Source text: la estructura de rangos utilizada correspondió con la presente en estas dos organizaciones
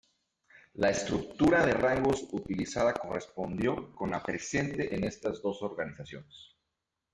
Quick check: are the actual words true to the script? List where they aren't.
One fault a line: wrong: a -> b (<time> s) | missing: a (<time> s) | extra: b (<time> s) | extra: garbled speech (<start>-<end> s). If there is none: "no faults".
no faults